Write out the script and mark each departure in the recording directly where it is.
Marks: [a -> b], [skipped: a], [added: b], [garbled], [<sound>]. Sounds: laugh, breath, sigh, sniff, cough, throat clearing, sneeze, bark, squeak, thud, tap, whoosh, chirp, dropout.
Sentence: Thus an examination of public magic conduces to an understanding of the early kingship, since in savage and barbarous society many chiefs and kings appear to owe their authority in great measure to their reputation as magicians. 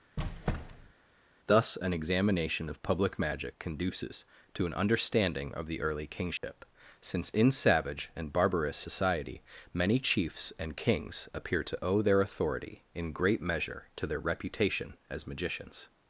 [squeak] Thus an examination of public magic conduces to an understanding of the early kingship, [dropout] since in savage and barbarous society many chiefs and kings appear to owe their authority in great measure to their reputation as magicians.